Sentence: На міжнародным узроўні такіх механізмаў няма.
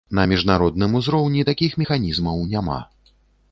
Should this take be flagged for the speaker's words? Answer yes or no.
no